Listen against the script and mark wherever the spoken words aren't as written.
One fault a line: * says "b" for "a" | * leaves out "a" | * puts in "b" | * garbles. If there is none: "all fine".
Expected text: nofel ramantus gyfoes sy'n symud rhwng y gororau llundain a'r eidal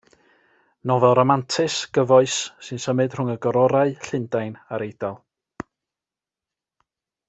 all fine